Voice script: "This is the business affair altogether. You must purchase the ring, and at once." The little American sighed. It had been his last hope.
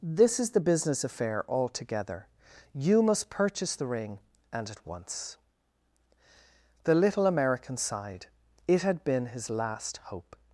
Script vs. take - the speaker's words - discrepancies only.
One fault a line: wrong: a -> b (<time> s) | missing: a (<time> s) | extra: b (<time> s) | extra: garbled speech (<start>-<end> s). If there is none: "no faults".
no faults